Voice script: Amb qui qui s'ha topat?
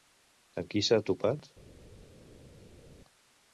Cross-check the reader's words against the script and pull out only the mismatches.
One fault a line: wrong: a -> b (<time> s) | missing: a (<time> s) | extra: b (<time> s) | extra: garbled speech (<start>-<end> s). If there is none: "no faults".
missing: qui (0.8 s)